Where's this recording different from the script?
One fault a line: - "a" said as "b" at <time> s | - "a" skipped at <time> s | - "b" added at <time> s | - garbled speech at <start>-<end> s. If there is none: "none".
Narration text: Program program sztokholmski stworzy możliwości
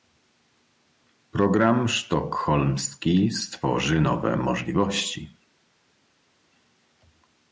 - "program" skipped at 1.9 s
- "nowe" added at 4.0 s